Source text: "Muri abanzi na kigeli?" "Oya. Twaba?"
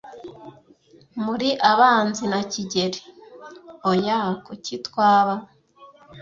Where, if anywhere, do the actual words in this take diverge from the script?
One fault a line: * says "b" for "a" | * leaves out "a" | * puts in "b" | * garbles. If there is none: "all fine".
* puts in "Kuki"